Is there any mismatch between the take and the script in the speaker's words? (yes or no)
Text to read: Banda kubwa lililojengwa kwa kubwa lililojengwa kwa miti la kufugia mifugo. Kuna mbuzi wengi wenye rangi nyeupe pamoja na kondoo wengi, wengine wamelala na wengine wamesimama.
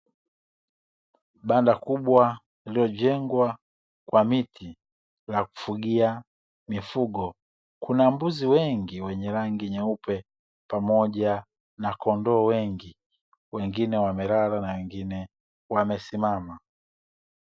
yes